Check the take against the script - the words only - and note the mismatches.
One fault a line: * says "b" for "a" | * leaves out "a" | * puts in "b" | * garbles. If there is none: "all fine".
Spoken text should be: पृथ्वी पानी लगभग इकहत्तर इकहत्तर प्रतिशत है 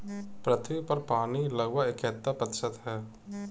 * puts in "पर"
* leaves out "इकहत्तर"